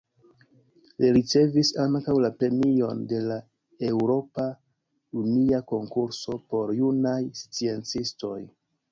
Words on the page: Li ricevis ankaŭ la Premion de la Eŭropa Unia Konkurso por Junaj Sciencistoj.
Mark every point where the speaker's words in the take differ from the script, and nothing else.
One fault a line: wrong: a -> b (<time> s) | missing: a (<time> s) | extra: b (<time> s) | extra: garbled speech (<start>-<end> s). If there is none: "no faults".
no faults